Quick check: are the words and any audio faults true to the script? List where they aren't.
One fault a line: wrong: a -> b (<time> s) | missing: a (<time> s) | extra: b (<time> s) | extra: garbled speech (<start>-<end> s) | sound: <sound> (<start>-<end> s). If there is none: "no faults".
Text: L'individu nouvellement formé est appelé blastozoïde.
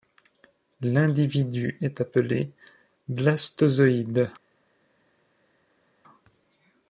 missing: nouvellement formé (1.8 s)